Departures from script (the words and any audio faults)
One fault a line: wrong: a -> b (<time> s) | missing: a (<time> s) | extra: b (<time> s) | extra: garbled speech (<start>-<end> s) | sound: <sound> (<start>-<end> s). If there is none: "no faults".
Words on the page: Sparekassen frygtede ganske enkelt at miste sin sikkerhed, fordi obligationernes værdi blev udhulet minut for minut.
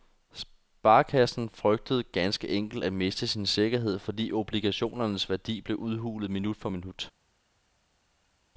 no faults